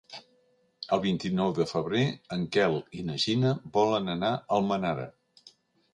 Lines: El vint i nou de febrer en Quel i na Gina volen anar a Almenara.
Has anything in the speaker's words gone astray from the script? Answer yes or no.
no